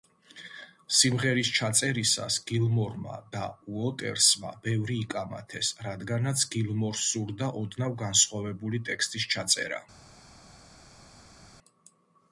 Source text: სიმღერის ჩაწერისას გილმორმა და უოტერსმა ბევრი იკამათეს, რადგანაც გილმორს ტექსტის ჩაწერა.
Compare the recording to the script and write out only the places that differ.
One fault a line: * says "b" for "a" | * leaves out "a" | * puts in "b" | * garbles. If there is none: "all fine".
* puts in "სურდა ოდნავ განსხვავებული"